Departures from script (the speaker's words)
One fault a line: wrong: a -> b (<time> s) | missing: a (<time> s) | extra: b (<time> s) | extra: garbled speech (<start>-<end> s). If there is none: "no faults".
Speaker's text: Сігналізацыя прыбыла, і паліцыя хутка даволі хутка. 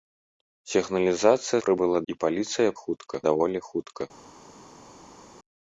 no faults